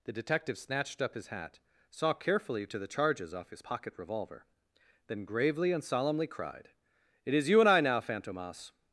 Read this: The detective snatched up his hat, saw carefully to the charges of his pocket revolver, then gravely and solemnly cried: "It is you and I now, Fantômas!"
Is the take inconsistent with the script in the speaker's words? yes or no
yes